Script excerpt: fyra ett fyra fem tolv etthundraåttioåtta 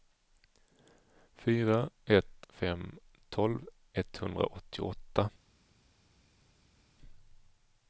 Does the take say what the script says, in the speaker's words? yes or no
no